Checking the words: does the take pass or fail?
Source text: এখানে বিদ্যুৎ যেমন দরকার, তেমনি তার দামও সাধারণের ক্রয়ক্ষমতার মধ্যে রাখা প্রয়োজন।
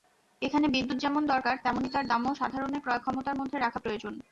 pass